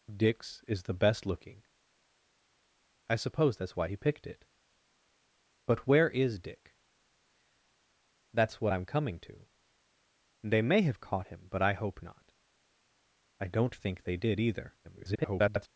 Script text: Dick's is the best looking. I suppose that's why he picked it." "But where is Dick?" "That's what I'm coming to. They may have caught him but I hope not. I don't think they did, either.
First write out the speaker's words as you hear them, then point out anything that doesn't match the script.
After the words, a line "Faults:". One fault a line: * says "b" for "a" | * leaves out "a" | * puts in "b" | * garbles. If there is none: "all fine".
Dick's is the best looking. I suppose that's why he picked it." "But where is Dick?" "That's what I'm coming to. They may have caught him but I hope not. I don't think they did, either. [garbled]
Faults:
* garbles